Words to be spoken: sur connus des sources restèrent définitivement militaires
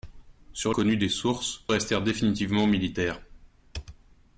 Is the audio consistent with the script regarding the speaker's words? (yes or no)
yes